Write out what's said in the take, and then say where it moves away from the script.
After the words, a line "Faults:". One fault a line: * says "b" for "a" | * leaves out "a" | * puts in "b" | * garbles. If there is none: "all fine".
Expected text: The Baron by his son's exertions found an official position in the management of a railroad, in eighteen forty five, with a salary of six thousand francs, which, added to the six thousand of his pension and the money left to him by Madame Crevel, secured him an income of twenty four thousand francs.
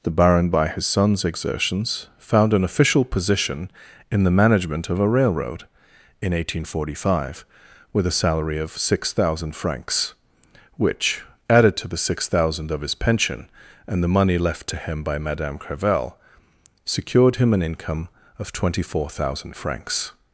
The Baron by his son's exertions found an official position in the management of a railroad, in eighteen forty five, with a salary of six thousand francs, which, added to the six thousand of his pension and the money left to him by Madame Crevel, secured him an income of twenty four thousand francs.
Faults:
all fine